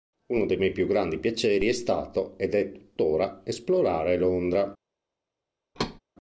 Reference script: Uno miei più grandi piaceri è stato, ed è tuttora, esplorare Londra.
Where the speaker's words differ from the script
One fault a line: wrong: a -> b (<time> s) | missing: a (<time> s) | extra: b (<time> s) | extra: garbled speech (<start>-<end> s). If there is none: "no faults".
extra: dei (0.5 s)